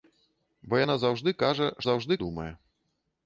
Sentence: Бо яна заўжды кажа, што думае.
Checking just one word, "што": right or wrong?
wrong